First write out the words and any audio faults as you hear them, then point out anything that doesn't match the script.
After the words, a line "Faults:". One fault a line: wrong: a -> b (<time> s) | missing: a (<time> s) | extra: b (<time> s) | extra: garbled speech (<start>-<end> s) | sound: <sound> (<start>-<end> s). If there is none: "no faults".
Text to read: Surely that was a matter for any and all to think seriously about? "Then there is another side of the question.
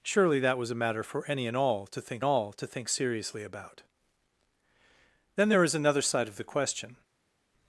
Surely that was a matter for any and all to think all to think seriously about? "Then there is another side of the question.
Faults:
extra: all to think (2.2 s)